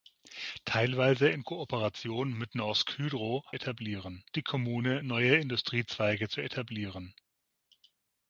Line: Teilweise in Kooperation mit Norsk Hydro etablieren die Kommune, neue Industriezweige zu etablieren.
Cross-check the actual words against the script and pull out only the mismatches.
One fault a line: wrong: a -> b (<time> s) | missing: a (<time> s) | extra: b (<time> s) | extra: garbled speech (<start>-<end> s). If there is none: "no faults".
no faults